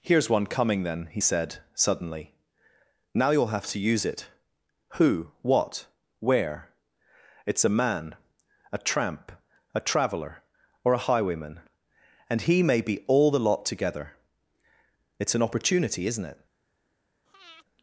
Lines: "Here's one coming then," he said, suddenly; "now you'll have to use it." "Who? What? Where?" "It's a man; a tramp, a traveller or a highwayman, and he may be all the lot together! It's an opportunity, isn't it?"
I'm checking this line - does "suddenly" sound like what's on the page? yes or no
yes